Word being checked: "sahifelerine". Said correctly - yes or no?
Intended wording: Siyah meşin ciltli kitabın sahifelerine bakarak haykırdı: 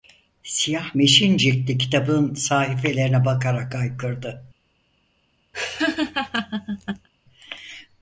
yes